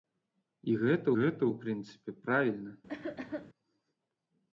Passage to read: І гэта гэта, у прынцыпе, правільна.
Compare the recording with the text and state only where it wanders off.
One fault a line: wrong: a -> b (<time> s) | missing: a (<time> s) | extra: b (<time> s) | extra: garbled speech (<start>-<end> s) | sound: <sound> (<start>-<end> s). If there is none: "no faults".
sound: cough (2.9-3.5 s)